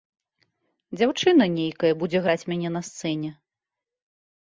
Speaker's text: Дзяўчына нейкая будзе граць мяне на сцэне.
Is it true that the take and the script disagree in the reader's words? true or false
false